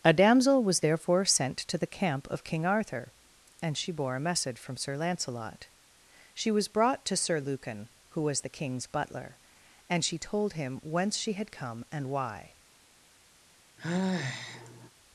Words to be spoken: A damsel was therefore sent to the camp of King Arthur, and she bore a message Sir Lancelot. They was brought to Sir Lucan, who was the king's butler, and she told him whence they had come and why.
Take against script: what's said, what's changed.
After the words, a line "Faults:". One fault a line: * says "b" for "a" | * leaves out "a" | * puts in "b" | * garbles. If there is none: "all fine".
A damsel was therefore sent to the camp of King Arthur, and she bore a message from Sir Lancelot. She was brought to Sir Lucan, who was the king's butler, and she told him whence she had come and why.
Faults:
* puts in "from"
* says "She" for "They"
* says "she" for "they"